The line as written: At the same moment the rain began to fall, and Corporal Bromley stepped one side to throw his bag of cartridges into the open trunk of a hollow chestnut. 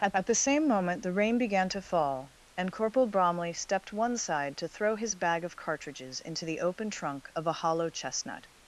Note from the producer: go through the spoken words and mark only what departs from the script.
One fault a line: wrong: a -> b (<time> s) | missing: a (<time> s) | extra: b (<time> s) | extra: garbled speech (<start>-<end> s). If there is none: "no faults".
extra: at (0.2 s)